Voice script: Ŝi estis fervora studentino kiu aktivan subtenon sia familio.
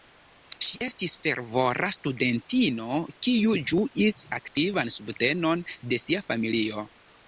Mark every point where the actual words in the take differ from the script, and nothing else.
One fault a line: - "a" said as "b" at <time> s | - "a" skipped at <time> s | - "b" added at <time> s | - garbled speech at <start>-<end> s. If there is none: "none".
- "ĝuis" added at 3.8 s
- "de" added at 5.9 s